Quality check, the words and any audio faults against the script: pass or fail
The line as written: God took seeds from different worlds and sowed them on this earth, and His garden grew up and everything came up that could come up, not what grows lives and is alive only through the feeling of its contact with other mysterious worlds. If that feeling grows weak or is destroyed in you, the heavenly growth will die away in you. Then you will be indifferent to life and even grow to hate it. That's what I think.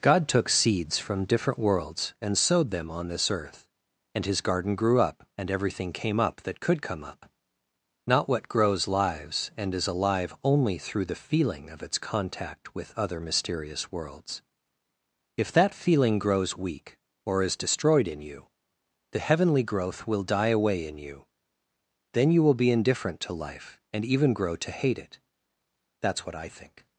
pass